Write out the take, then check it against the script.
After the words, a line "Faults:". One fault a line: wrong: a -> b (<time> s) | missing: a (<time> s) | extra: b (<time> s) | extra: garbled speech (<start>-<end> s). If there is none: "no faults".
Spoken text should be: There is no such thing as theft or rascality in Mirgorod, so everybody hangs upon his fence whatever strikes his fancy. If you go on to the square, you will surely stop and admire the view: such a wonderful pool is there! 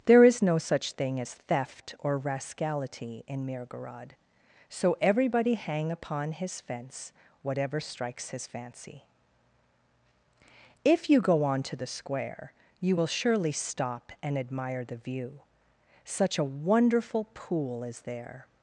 There is no such thing as theft or rascality in Mirgorod, so everybody hang upon his fence whatever strikes his fancy. If you go on to the square, you will surely stop and admire the view: such a wonderful pool is there!
Faults:
wrong: hangs -> hang (5.5 s)